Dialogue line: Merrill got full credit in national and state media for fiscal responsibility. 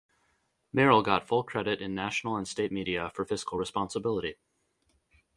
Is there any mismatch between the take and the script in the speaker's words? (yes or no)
no